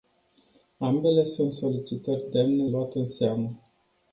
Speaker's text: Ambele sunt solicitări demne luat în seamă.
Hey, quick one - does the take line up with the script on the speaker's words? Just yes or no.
yes